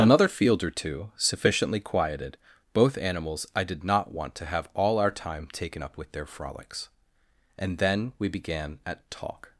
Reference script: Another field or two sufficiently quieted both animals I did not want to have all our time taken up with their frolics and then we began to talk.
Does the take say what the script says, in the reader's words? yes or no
no